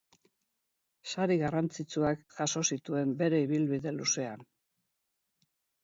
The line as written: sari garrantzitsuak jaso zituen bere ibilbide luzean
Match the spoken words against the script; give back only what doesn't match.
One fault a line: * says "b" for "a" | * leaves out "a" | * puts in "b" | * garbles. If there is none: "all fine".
all fine